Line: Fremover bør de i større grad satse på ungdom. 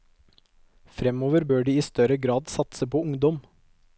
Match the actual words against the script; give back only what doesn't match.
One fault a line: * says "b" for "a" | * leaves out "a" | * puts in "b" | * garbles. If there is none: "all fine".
all fine